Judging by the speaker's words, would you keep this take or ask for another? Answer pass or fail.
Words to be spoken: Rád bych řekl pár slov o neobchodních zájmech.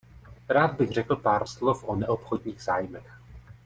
pass